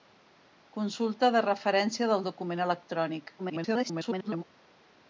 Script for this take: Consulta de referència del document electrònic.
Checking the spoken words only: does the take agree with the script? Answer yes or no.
no